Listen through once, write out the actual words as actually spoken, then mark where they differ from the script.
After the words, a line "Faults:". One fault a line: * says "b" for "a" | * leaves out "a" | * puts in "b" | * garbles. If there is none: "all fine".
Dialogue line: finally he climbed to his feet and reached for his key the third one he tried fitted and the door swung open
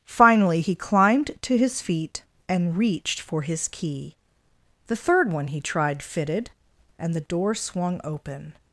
finally he climbed to his feet and reached for his key the third one he tried fitted and the door swung open
Faults:
all fine